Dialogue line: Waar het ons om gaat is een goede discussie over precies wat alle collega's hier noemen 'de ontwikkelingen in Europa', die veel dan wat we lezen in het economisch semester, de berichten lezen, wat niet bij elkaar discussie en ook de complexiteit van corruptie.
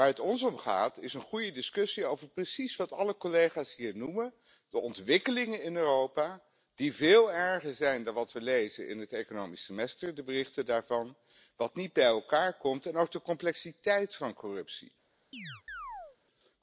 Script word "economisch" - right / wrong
right